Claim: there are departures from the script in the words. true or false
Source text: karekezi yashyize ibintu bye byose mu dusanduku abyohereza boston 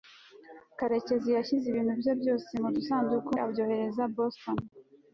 false